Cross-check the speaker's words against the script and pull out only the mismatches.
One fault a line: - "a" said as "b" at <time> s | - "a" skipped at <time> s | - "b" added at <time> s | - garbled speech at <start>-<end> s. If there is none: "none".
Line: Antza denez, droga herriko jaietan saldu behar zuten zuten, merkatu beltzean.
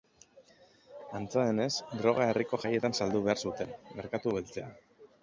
- "zuten" skipped at 3.7 s